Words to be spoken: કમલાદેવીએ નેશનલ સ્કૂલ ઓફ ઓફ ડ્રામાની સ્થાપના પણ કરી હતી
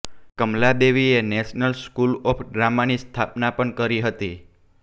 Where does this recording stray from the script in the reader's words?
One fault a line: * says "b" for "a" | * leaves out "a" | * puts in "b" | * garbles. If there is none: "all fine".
* leaves out "ઓફ"